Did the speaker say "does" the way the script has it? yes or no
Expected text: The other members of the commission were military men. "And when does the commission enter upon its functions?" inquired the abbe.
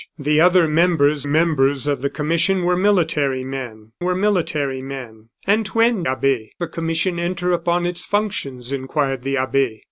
no